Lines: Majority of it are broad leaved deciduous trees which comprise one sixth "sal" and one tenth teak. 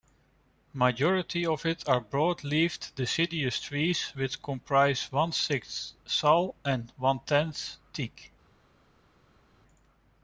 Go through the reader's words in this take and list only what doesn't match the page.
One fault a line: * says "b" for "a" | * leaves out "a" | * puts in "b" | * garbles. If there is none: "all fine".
all fine